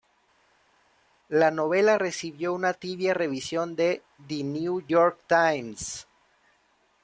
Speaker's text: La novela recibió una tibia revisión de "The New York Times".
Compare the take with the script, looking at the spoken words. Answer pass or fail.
pass